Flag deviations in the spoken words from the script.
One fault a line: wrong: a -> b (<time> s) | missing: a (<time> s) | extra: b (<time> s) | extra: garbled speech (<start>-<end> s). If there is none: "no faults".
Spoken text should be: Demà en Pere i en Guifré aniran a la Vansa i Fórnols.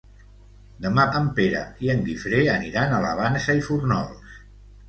no faults